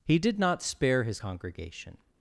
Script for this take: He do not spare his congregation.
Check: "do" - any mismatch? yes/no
yes